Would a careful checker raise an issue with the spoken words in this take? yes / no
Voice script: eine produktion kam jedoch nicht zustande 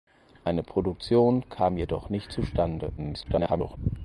yes